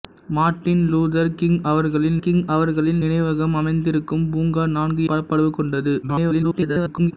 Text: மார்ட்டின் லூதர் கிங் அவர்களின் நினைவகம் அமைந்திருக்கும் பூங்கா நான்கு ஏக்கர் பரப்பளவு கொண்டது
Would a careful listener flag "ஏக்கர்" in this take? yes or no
yes